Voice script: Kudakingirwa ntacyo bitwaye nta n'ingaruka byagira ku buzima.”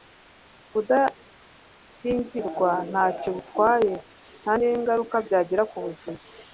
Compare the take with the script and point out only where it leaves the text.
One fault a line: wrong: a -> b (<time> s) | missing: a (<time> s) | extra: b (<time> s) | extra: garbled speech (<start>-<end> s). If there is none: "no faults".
no faults